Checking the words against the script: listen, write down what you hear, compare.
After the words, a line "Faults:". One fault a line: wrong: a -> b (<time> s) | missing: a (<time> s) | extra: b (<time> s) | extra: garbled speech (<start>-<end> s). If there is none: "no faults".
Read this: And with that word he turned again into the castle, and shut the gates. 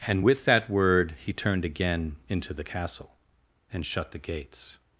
And with that word he turned again into the castle, and shut the gates.
Faults:
no faults